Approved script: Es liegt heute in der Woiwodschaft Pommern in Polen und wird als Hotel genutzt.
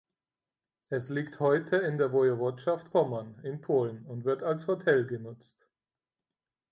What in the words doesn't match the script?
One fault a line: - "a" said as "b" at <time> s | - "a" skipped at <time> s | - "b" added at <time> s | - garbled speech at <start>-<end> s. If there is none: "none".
none